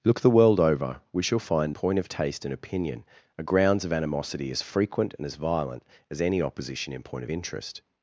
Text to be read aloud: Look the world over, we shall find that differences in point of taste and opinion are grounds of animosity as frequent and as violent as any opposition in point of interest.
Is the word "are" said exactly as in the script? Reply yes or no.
yes